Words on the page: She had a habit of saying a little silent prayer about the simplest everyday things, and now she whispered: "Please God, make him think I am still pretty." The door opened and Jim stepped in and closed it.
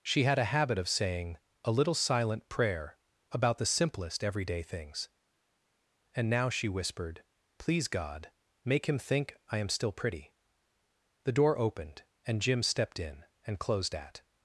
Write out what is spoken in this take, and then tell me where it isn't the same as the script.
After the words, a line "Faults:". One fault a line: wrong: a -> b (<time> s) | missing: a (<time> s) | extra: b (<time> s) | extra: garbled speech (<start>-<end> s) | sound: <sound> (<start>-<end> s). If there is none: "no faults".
She had a habit of saying a little silent prayer about the simplest everyday things, and now she whispered: "Please God, make him think I am still pretty." The door opened and Jim stepped in and closed at.
Faults:
wrong: it -> at (13.9 s)